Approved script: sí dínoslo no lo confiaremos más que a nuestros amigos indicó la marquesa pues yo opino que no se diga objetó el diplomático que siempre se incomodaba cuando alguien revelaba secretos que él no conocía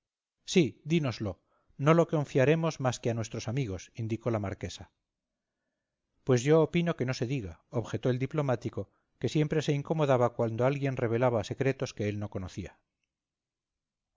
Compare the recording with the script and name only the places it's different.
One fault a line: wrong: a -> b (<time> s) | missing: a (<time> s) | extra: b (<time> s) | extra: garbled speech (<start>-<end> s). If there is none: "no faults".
no faults